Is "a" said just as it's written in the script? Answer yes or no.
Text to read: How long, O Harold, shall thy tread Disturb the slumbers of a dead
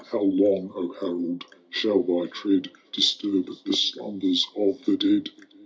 no